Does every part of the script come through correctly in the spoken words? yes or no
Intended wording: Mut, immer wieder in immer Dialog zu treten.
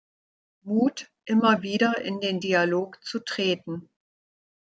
no